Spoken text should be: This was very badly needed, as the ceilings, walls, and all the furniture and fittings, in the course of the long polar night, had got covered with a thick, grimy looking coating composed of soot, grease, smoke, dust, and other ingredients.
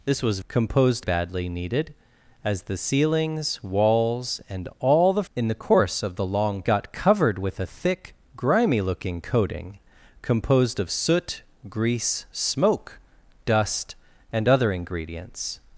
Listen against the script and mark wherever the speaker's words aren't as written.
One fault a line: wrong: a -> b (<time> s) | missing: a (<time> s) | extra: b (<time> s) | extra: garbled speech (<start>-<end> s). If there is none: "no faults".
wrong: very -> composed (0.5 s)
missing: furniture and fittings (5.2 s)
missing: polar night had (6.6 s)